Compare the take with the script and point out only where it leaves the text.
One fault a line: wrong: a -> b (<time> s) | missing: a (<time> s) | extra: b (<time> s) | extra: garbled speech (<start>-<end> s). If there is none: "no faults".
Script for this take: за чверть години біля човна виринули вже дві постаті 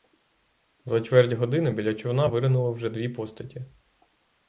no faults